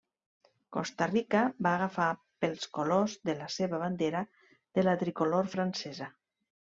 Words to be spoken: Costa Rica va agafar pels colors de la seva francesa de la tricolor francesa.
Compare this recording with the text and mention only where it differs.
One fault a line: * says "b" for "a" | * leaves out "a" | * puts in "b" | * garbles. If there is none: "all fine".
* says "bandera" for "francesa"